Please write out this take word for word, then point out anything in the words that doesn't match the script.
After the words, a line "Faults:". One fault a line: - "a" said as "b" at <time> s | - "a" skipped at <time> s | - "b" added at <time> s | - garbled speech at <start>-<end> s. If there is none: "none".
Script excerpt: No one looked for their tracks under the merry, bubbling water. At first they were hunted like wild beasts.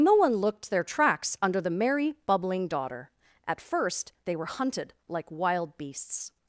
No one looked their tracks under the merry, bubbling daughter. At first they were hunted like wild beasts.
Faults:
- "for" skipped at 0.7 s
- "water" said as "daughter" at 2.7 s